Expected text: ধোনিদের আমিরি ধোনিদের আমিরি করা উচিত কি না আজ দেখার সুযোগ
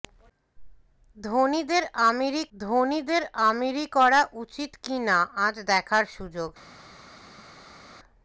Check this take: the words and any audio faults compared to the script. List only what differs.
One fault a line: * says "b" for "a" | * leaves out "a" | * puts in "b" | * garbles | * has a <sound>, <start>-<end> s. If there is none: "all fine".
all fine